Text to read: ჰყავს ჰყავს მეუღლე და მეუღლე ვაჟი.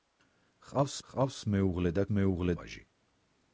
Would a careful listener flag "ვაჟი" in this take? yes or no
no